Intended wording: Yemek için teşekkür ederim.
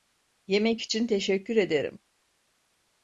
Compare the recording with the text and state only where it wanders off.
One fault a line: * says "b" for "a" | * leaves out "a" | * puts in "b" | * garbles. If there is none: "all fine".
all fine